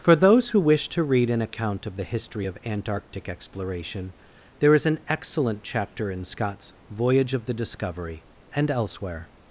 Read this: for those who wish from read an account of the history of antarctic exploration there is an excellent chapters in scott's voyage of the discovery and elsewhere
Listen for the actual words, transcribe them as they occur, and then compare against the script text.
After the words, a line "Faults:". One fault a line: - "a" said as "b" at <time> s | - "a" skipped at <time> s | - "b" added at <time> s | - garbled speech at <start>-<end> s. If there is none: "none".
for those who wish to read an account of the history of antarctic exploration there is an excellent chapter in scott's voyage of the discovery and elsewhere
Faults:
- "from" said as "to" at 0.9 s
- "chapters" said as "chapter" at 5.6 s